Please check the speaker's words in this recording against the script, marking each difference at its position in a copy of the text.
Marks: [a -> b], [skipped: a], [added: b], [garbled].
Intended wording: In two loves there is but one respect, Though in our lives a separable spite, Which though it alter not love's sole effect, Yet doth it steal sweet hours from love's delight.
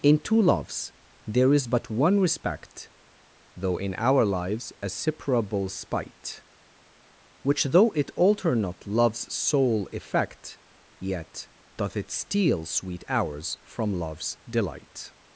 In two loves there is but one respect, Though in our lives a separable spite, Which though it alter not love's sole effect, Yet doth it steal sweet hours from love's delight.